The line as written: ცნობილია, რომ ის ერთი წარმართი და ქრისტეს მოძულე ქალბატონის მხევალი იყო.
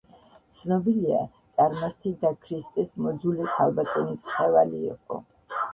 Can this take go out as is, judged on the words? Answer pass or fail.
fail